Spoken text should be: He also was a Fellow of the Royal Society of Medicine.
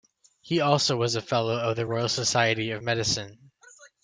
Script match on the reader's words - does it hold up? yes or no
yes